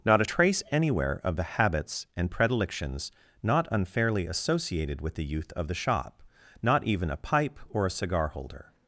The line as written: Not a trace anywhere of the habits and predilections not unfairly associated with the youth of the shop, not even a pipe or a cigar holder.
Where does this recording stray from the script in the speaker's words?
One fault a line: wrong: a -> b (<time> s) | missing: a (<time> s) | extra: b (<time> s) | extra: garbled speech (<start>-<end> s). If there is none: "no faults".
no faults